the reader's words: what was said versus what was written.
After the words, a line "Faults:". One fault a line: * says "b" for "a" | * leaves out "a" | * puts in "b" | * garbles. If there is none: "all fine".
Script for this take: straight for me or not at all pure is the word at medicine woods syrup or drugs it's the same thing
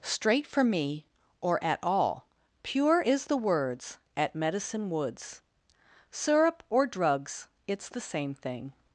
straight for me or at all pure is the words at medicine woods syrup or drugs it's the same thing
Faults:
* leaves out "not"
* says "words" for "word"